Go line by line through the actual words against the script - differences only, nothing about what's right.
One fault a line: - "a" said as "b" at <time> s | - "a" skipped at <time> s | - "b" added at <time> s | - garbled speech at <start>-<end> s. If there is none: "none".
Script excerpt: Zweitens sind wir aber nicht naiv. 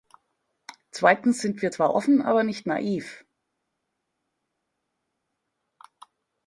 - "zwar offen" added at 1.7 s